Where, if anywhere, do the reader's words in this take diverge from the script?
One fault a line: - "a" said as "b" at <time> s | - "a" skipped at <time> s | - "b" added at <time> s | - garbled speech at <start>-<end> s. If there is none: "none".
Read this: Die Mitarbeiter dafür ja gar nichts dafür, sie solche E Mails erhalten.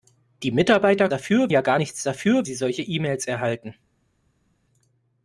none